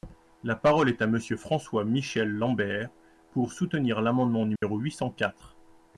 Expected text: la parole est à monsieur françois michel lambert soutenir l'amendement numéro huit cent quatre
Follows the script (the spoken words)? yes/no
no